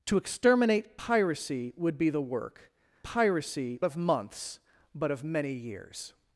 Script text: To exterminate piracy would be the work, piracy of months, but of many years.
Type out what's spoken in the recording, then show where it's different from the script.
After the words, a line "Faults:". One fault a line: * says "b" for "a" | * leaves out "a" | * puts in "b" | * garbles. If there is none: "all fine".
To exterminate piracy would be the work, piracy of months, but of many years.
Faults:
all fine